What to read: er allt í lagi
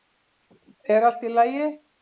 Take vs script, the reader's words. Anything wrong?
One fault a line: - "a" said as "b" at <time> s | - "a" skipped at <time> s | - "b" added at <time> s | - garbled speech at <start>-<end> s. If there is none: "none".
none